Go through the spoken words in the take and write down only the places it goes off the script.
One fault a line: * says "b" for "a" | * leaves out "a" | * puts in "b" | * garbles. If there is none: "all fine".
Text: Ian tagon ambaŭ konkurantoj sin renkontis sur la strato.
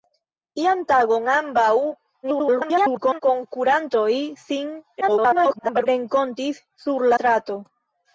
* garbles
* garbles
* leaves out "la"